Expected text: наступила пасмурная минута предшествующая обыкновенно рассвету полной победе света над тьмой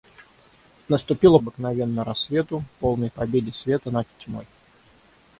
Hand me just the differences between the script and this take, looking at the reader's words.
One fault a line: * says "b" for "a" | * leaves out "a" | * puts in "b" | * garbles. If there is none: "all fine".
* leaves out "пасмурная минута предшествующая"